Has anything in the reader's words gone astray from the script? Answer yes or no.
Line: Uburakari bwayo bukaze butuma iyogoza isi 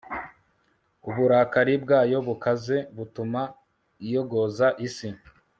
no